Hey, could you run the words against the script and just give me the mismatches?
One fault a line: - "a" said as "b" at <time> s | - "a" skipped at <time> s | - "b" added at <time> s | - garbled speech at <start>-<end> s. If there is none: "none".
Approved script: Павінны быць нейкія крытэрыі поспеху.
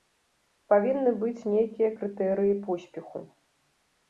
none